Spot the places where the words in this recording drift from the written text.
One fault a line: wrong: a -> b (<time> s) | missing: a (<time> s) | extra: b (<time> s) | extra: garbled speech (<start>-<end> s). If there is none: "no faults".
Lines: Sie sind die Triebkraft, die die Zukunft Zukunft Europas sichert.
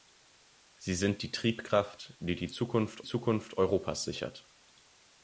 no faults